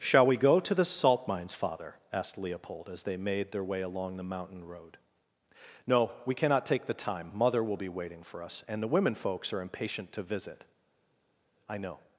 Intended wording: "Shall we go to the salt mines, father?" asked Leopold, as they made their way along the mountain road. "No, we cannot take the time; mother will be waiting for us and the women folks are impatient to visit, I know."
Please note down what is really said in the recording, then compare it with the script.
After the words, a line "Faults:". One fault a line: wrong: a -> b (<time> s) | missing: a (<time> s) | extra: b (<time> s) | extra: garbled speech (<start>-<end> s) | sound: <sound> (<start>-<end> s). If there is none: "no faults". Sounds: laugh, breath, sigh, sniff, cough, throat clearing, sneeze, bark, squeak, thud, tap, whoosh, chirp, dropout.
"Shall we go to the salt mines, father?" asked Leopold, as they made their way along the mountain road. "No, we cannot take the time; mother will be waiting for us and the women folks are impatient to visit, I know."
Faults:
no faults